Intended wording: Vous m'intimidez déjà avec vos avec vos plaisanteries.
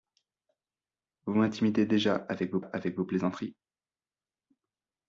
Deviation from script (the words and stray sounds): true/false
false